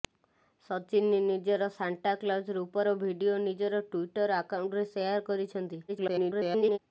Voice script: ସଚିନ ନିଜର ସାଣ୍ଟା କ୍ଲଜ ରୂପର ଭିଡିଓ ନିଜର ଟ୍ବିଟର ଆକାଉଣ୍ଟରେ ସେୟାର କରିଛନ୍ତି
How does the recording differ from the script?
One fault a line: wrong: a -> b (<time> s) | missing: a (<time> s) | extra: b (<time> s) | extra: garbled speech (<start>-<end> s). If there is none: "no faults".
extra: garbled speech (5.9-6.8 s)